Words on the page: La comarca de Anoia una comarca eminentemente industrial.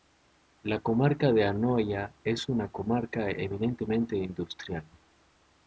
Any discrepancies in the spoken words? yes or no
yes